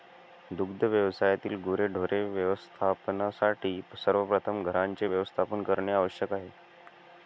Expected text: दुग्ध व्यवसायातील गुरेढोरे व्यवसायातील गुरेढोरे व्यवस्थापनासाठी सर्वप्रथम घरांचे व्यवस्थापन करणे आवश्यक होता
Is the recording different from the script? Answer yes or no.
yes